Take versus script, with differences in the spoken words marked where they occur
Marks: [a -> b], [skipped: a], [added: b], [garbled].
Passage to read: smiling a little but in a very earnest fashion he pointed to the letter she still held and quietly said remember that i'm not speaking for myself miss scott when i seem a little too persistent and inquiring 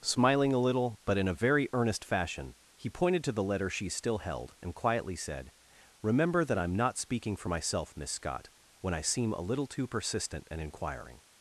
smiling a little but in a very earnest fashion he pointed to the letter she still held and quietly said remember that i'm not speaking for myself miss scott when i seem a little too persistent and inquiring